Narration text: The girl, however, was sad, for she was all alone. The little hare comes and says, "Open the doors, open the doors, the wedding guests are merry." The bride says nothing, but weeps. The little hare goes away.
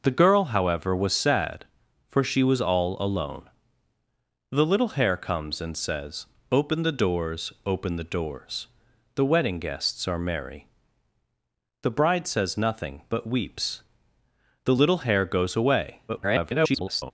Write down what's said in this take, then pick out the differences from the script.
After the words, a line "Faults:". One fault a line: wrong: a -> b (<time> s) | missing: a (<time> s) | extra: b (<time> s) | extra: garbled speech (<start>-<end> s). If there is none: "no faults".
The girl, however, was sad, for she was all alone. The little hare comes and says, "Open the doors, open the doors, the wedding guests are merry." The bride says nothing, but weeps. The little hare goes away. [garbled]
Faults:
extra: garbled speech (16.1-17.1 s)